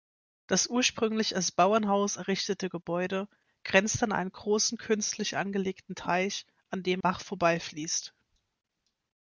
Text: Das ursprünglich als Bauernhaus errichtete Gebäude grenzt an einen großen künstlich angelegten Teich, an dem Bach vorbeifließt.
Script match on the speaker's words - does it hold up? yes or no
yes